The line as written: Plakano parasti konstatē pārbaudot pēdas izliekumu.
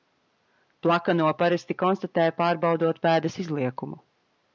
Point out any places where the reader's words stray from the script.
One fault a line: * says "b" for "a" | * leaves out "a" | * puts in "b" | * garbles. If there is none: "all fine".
all fine